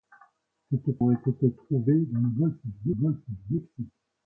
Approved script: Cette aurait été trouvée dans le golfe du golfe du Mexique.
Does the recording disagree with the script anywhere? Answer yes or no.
no